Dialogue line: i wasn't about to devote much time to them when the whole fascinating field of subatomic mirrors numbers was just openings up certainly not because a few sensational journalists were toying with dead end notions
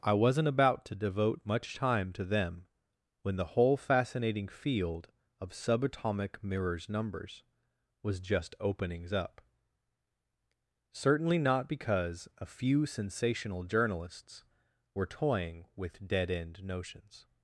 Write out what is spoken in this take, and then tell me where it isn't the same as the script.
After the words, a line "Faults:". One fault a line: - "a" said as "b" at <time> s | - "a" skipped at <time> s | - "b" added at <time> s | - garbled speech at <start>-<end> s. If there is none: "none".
i wasn't about to devote much time to them when the whole fascinating field of subatomic mirrors numbers was just openings up certainly not because a few sensational journalists were toying with dead end notions
Faults:
none